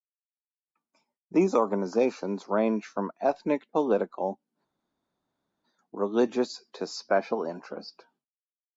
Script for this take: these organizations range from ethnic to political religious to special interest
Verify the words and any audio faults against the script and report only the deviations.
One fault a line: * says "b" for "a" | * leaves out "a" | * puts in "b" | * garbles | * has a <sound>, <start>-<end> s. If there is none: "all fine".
* leaves out "to"